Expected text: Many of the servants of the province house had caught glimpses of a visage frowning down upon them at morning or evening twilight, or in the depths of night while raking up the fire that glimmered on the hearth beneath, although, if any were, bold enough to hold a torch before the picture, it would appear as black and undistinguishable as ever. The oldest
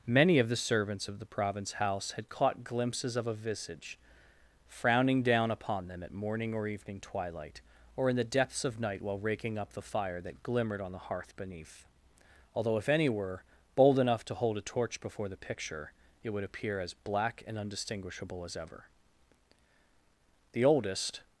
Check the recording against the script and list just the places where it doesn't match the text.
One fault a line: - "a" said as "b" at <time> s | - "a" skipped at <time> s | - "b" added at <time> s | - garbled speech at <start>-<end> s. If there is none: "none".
none